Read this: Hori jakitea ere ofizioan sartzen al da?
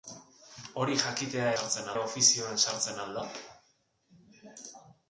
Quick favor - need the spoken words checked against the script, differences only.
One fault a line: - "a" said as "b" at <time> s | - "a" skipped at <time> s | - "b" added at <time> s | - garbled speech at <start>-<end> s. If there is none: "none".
- "ere" said as "sartzen" at 1.5 s